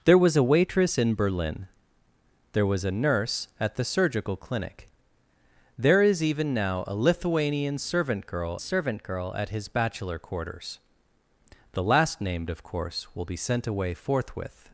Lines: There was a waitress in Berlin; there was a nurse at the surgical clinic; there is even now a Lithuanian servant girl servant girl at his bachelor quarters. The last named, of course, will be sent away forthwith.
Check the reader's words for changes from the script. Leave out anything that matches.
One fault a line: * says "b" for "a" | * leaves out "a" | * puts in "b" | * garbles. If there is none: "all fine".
all fine